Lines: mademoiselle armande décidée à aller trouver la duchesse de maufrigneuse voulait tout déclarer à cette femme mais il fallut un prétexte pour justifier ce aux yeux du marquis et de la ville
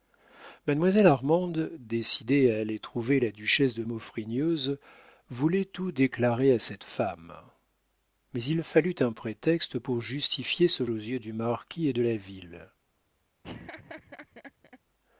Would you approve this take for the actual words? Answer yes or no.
yes